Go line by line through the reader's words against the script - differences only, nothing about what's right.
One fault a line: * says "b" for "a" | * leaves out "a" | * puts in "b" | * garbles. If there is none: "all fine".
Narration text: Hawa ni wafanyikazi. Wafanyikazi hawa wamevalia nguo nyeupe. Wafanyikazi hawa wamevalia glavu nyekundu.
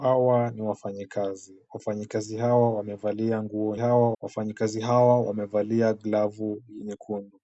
* says "hawa" for "nyeupe"